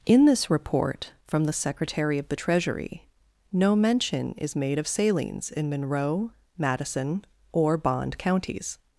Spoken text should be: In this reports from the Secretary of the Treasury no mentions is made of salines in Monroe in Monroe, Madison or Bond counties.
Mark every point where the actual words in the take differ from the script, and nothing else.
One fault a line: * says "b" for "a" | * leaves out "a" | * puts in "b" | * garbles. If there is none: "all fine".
* says "report" for "reports"
* says "mention" for "mentions"
* leaves out "in Monroe"